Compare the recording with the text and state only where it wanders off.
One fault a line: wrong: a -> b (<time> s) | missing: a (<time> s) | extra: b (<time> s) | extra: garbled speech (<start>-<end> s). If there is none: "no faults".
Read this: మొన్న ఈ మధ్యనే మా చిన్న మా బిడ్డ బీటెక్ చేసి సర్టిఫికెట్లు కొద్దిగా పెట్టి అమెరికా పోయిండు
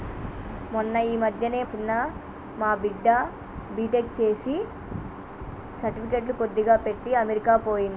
missing: మా (1.6 s)